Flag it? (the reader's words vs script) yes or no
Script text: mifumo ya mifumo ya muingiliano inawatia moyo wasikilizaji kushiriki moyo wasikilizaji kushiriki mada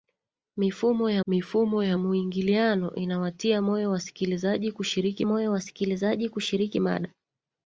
no